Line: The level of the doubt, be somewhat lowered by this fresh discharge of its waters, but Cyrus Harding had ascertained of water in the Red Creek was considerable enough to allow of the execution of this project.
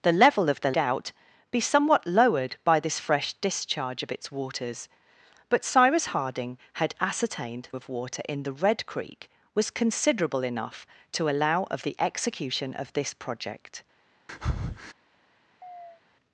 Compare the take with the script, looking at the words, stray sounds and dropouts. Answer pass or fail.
fail